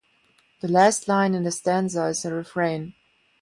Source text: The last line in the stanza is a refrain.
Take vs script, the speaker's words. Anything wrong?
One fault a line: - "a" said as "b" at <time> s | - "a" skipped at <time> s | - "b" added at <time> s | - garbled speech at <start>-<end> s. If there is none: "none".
none